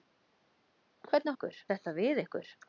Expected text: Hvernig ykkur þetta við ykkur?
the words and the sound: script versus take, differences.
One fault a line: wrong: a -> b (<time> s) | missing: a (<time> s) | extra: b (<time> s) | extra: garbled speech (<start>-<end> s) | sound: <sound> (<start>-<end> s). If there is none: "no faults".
no faults